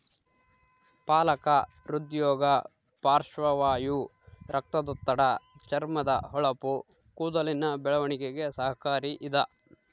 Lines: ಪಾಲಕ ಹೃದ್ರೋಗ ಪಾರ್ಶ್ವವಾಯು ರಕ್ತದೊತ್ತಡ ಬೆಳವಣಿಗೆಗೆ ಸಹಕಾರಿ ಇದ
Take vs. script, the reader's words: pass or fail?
fail